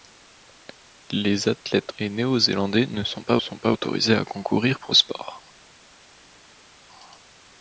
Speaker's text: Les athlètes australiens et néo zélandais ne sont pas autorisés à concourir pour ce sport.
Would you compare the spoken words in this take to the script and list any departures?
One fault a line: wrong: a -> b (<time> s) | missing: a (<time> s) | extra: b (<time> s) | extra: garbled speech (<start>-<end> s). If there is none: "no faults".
missing: australiens (1.9 s)
extra: sont pas (3.4 s)
missing: ce (4.9 s)